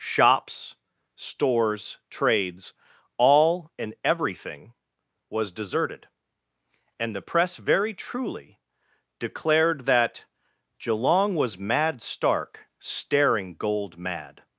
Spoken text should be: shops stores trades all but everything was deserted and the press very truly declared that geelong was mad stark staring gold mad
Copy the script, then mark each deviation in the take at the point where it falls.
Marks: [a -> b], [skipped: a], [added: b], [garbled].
shops stores trades all [but -> and] everything was deserted and the press very truly declared that geelong was mad stark staring gold mad